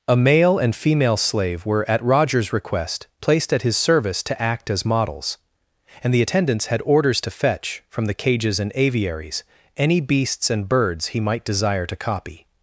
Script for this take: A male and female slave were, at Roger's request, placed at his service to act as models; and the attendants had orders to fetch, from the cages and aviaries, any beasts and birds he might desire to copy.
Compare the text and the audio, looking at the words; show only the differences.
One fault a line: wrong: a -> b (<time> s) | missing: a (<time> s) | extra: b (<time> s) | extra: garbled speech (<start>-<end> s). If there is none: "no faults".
no faults